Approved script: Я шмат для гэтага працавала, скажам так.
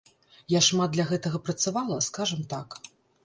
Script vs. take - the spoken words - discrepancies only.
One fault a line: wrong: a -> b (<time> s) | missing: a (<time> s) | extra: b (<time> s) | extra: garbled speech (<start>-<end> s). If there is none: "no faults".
no faults